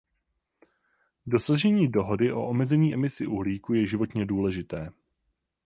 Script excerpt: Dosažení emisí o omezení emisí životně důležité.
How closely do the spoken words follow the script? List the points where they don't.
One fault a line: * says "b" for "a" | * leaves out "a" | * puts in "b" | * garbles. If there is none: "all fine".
* says "dohody" for "emisí"
* puts in "uhlíku je"